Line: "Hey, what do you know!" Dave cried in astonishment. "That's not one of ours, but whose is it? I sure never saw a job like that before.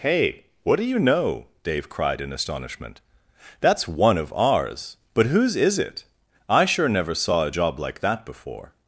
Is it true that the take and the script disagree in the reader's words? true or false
true